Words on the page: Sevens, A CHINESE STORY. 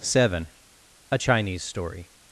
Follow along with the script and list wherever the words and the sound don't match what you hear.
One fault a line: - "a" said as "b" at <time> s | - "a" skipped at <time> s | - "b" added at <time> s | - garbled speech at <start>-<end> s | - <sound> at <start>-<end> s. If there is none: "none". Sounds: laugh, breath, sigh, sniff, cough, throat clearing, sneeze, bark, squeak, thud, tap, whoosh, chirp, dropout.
- "Sevens" said as "Seven" at 0.0 s